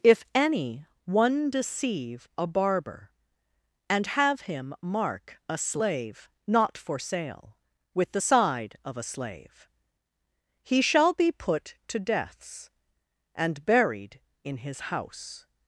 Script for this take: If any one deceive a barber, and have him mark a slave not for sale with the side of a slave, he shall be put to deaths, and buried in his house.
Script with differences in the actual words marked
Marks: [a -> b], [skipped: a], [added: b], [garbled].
If any one deceive a barber, and have him mark a slave not for sale with the side of a slave, he shall be put to deaths, and buried in his house.